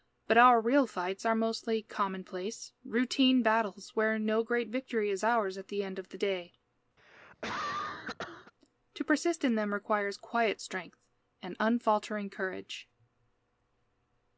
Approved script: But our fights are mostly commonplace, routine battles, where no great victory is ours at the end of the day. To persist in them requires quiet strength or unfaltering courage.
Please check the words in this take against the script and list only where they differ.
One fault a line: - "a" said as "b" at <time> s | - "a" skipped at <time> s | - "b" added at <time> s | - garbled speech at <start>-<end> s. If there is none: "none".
- "real" added at 0.6 s
- "or" said as "and" at 11.4 s